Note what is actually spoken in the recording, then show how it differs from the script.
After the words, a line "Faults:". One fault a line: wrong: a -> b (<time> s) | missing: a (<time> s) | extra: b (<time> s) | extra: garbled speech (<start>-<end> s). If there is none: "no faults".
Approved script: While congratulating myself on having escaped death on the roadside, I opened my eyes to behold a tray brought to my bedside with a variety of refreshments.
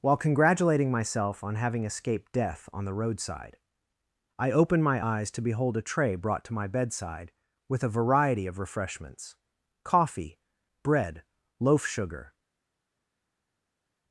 While congratulating myself on having escaped death on the roadside, I opened my eyes to behold a tray brought to my bedside with a variety of refreshments. Coffee! Bread! Loaf sugar
Faults:
extra: Coffee Bread Loaf sugar (9.8 s)